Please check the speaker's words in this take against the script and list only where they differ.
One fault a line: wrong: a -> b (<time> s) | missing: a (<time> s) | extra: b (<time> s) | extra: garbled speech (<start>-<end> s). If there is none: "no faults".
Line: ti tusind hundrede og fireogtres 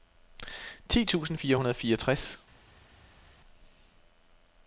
extra: fire (1.3 s)